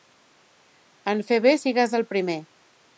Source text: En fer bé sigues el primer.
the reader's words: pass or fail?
pass